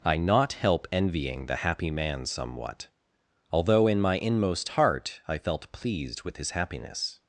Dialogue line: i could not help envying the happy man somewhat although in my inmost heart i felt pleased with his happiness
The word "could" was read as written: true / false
false